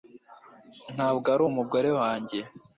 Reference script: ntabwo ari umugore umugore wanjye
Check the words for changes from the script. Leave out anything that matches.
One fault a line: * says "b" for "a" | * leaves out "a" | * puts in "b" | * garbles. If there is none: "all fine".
* leaves out "umugore"